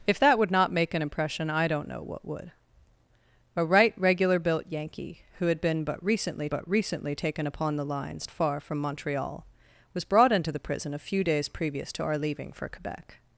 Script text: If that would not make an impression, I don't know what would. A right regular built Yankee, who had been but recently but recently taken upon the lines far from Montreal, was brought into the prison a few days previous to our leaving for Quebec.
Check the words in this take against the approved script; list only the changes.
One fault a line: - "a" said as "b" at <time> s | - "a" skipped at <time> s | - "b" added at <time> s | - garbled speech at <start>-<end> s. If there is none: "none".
none